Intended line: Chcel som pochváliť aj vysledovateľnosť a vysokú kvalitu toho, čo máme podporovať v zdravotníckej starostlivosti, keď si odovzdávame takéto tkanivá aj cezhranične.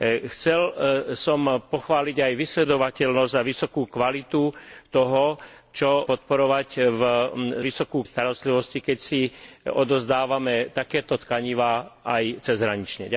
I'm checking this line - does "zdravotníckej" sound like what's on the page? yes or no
no